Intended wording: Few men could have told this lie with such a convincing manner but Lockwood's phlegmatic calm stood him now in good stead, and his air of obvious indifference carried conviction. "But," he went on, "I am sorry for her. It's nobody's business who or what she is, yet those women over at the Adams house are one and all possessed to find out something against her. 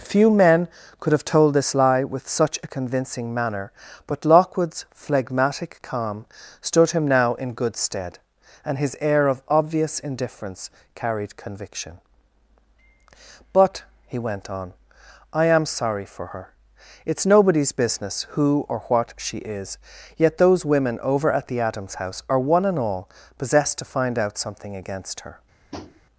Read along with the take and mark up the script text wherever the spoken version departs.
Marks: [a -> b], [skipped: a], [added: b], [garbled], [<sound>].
Few men could have told this lie with such a convincing manner but Lockwood's phlegmatic calm stood him now in good stead, and his air of obvious indifference carried conviction. "But," he went on, "I am sorry for her. It's nobody's business who or what she is, yet those women over at the Adams house are one and all possessed to find out something against her. [tap]